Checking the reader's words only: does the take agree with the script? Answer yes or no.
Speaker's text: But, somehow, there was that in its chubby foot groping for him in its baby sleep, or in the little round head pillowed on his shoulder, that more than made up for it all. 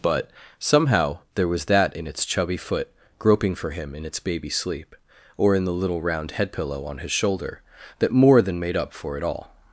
no